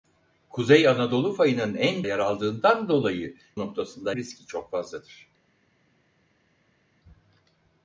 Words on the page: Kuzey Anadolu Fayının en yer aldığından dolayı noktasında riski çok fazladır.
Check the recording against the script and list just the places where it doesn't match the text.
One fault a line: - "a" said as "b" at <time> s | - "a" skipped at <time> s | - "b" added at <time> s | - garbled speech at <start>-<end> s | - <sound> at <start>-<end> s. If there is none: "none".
none